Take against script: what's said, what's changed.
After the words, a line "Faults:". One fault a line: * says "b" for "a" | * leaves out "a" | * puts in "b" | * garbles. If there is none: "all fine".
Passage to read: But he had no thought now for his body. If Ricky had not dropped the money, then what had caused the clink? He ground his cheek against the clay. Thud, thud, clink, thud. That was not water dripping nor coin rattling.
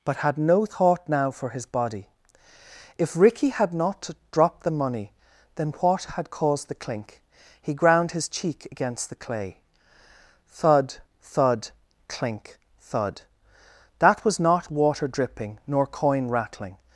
But had no thought now for his body. If Ricky had not dropped the money, then what had caused the clink? He ground his cheek against the clay. Thud, thud, clink, thud. That was not water dripping nor coin rattling.
Faults:
* leaves out "he"